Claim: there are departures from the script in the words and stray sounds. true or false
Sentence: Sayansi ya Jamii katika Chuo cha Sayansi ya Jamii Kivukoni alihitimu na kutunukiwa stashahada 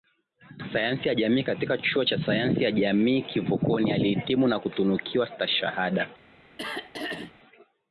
true